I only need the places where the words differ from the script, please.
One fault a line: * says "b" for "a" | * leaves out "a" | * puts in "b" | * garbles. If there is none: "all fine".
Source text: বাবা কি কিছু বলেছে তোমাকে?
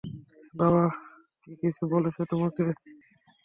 all fine